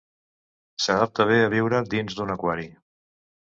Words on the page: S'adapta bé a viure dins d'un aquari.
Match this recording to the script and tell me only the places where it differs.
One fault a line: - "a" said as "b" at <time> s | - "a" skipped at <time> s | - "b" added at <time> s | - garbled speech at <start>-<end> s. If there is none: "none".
none